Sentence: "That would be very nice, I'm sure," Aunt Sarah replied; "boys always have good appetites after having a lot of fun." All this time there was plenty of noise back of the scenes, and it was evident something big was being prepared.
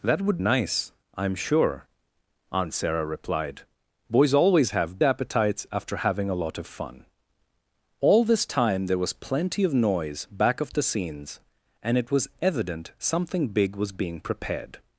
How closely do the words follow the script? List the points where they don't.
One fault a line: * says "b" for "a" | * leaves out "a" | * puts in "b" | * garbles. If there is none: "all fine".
* leaves out "be very"
* leaves out "good"